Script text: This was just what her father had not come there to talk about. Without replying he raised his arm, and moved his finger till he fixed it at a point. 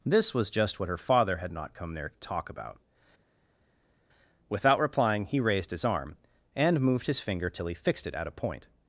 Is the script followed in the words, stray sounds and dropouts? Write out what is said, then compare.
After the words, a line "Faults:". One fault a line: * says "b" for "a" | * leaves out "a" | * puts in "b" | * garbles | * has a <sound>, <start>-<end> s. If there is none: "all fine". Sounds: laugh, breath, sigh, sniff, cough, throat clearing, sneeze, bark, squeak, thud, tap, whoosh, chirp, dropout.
This was just what her father had not come there to talk about. Without replying he raised his arm, and moved his finger till he fixed it at a point.
Faults:
all fine